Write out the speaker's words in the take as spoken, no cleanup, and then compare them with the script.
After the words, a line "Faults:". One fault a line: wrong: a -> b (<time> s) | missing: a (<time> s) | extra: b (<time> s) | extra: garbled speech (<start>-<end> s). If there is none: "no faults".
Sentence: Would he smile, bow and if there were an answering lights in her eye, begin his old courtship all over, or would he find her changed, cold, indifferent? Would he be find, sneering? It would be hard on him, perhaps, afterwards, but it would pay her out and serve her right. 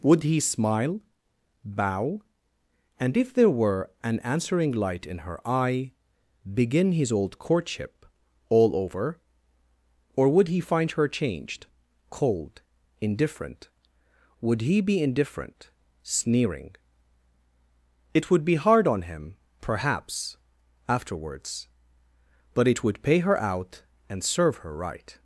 Would he smile, bow and if there were an answering light in her eye, begin his old courtship all over, or would he find her changed, cold, indifferent? Would he be indifferent, sneering? It would be hard on him, perhaps, afterwards, but it would pay her out and serve her right.
Faults:
wrong: lights -> light (4.7 s)
wrong: find -> indifferent (15.0 s)